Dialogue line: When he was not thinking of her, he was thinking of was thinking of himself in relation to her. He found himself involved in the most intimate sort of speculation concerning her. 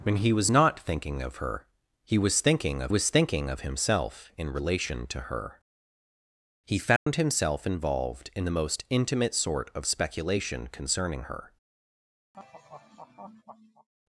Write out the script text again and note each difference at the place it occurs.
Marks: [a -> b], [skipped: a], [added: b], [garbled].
When he was not thinking of her, he was thinking of was thinking of himself in relation to her. He found himself involved in the most intimate sort of speculation concerning her.